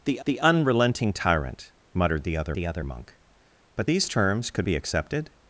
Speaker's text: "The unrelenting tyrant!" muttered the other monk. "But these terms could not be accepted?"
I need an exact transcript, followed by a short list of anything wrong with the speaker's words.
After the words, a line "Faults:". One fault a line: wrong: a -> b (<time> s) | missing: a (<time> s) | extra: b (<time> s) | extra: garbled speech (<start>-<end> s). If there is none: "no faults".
"The the unrelenting tyrant!" muttered the other the other monk. "But these terms could be accepted?"
Faults:
extra: the (0.3 s)
extra: the other (2.5 s)
missing: not (4.6 s)